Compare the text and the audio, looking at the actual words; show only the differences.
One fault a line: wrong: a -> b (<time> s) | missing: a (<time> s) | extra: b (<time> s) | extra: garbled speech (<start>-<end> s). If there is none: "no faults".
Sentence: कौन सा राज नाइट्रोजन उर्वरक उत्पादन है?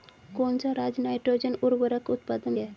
no faults